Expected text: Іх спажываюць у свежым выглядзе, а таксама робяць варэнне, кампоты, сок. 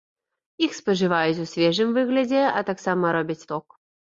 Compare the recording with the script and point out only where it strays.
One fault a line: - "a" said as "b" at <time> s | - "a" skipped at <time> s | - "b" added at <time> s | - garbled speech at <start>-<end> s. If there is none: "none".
- "варэнне кампоты" skipped at 3.5 s